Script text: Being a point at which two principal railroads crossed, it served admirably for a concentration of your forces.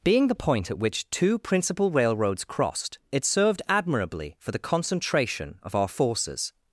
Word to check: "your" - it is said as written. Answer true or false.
false